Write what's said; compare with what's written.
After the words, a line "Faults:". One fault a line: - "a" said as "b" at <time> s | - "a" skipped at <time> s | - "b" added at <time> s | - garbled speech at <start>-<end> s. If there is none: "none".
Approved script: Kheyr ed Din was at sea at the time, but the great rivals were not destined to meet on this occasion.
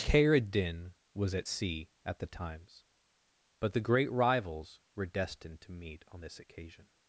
Kheyr ed Din was at sea at the times, but the great rivals were destined to meet on this occasion.
Faults:
- "time" said as "times" at 2.3 s
- "not" skipped at 5.1 s